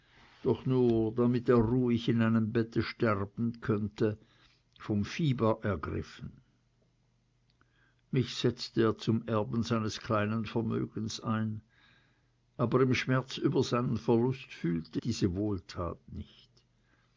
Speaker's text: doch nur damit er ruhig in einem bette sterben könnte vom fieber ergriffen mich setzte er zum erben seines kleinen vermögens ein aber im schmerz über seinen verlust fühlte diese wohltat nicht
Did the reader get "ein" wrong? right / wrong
right